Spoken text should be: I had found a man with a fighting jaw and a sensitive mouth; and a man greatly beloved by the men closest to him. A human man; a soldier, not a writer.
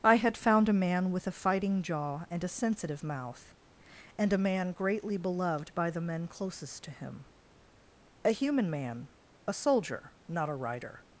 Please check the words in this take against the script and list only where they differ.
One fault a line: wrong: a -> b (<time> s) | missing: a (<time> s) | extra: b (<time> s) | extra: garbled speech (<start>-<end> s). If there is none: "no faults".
no faults